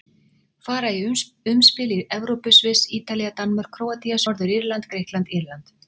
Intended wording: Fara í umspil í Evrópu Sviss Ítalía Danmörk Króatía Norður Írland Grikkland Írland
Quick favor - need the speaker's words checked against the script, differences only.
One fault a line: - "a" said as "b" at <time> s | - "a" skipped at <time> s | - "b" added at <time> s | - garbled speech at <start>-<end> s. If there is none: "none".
none